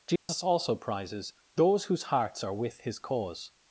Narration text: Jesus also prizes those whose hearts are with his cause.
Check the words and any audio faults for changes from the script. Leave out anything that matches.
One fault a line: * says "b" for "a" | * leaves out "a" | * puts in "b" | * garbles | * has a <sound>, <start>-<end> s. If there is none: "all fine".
* has a dropout, 0.2-0.3 s